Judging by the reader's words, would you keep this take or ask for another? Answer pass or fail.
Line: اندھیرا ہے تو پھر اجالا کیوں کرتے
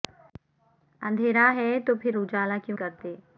pass